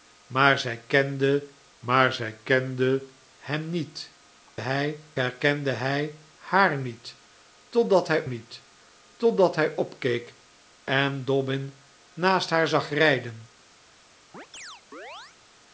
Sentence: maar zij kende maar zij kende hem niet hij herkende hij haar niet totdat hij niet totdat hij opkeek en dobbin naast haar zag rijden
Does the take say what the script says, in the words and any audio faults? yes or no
no